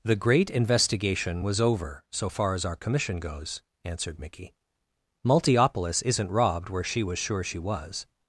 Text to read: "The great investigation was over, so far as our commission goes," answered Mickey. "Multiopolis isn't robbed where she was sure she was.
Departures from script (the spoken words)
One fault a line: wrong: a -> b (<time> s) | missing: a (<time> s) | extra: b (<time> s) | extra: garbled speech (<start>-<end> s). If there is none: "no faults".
no faults